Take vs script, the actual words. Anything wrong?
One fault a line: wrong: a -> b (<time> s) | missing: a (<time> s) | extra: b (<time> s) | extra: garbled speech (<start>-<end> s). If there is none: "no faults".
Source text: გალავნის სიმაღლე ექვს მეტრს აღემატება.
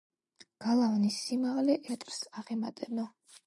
missing: ექვს (1.8 s)